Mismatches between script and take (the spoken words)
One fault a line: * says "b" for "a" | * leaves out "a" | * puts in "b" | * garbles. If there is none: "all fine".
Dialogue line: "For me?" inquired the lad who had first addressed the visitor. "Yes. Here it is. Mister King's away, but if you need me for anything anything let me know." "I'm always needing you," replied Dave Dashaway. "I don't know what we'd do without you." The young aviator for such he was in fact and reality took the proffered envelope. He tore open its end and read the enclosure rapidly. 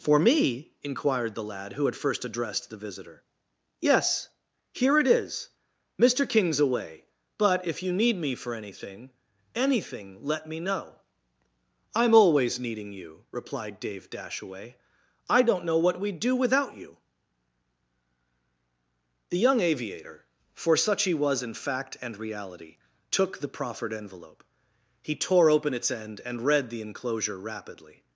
all fine